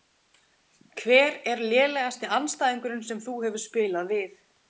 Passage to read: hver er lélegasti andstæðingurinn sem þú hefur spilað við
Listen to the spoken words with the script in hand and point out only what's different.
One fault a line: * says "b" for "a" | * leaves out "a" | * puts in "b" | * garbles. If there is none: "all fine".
all fine